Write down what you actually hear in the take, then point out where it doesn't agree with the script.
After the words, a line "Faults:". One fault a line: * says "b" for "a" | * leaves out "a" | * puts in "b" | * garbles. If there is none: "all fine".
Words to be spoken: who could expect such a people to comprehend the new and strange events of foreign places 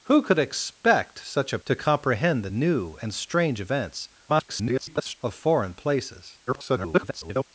who could expect such a to comprehend the new and strange events [garbled] of foreign places [garbled]
Faults:
* leaves out "people"
* garbles
* garbles